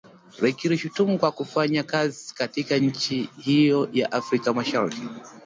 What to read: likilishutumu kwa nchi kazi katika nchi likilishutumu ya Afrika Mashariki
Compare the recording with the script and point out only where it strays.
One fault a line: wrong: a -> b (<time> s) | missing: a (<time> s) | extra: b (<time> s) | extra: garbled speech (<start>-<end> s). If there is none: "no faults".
wrong: nchi -> kufanya (1.3 s)
wrong: likilishutumu -> hiyo (3.4 s)